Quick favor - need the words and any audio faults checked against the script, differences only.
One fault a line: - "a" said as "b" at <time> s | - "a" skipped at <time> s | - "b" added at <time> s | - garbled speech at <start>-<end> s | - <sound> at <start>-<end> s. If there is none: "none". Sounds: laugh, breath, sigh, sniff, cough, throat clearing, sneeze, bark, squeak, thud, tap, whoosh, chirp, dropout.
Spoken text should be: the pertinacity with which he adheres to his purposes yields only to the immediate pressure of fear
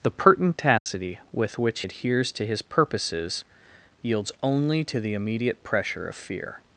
- dropout at 0.8-0.9 s
- "he" skipped at 1.8 s